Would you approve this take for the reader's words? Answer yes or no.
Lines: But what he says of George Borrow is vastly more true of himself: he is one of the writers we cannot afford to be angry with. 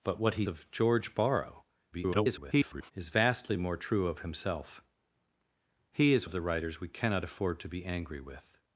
no